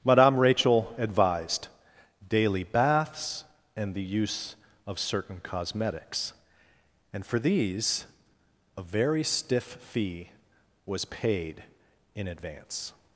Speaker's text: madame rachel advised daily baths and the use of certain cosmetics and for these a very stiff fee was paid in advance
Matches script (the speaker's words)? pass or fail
pass